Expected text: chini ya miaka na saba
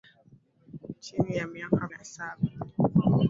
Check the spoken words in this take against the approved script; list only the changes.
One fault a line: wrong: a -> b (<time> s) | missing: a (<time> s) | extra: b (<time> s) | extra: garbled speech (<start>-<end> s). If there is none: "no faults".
no faults